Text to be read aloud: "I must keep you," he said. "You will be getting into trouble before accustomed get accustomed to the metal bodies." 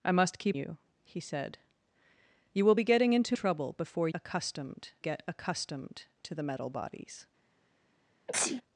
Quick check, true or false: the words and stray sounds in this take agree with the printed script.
false